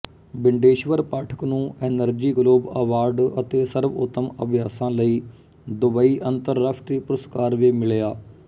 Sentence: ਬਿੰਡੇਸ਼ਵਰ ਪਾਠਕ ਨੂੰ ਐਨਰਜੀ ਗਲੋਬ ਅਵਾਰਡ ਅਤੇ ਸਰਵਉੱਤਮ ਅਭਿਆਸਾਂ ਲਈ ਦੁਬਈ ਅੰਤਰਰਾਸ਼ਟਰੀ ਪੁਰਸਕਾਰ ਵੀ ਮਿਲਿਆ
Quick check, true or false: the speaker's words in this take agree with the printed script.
true